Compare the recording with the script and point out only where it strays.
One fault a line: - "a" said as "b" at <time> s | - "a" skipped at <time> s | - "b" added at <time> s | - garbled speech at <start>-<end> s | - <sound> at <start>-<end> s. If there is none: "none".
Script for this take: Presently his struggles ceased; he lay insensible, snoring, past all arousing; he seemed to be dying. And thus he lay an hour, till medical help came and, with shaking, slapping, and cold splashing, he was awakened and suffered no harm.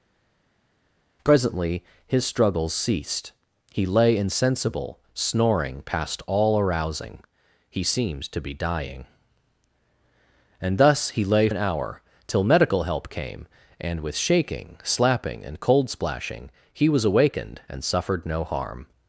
none